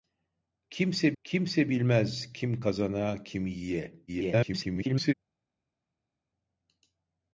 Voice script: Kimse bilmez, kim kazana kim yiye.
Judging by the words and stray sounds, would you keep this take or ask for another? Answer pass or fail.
fail